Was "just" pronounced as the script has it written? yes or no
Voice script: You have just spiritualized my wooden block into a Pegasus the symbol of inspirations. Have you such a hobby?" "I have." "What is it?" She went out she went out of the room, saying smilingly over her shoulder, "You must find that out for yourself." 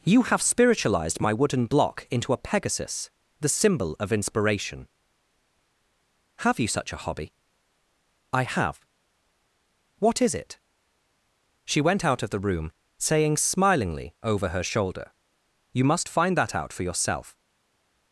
no